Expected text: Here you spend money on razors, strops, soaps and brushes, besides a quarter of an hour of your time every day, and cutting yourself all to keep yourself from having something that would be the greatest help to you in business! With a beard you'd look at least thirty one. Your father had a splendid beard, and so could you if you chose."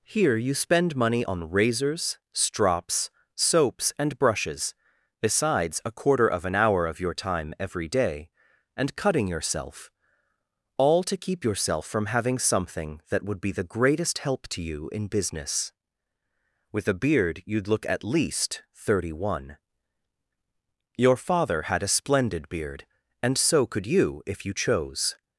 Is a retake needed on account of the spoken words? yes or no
no